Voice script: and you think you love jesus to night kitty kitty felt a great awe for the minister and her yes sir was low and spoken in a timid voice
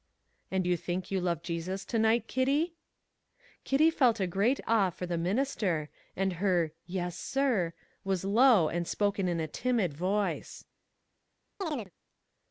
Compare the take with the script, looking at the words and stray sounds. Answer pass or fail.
fail